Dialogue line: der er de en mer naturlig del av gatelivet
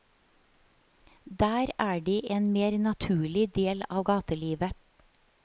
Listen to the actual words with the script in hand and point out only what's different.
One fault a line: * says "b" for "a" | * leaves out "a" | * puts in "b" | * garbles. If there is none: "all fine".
all fine